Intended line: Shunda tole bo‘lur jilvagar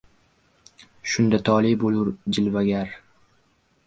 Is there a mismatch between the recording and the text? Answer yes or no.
no